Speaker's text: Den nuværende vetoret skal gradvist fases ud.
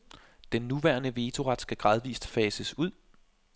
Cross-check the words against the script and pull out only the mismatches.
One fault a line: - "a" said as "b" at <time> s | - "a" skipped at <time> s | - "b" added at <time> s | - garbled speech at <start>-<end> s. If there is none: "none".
none